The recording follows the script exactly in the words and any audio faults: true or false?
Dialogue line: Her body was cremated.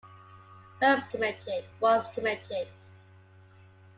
false